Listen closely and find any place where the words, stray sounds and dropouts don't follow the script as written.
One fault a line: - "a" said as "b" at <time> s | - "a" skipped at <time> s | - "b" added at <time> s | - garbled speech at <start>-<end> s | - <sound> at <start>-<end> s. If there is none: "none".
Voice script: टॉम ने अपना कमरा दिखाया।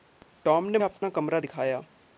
- dropout at 1.0-1.0 s